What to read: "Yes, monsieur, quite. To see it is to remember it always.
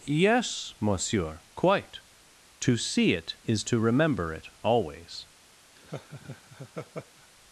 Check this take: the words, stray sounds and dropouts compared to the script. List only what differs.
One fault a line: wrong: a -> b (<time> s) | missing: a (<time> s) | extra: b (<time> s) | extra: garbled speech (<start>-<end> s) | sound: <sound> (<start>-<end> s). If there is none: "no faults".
sound: laugh (5.8-7.3 s)